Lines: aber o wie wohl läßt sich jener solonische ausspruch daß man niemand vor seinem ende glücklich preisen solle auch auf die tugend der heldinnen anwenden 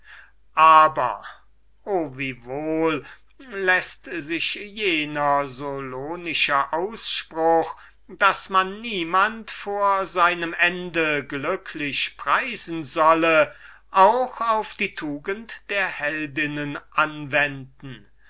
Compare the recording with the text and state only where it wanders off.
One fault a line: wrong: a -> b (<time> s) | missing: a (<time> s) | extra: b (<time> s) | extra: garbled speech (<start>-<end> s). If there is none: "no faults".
no faults